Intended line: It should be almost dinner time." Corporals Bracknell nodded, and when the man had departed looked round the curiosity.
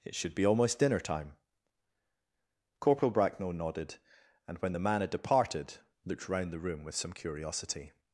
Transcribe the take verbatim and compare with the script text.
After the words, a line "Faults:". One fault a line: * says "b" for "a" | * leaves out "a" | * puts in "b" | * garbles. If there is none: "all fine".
It should be almost dinner time." Corporal Bracknell nodded, and when the man had departed looked round the room with some curiosity.
Faults:
* says "Corporal" for "Corporals"
* puts in "room with some"